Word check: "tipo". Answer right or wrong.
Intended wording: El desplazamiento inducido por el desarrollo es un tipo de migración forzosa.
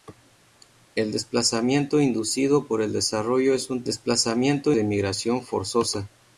wrong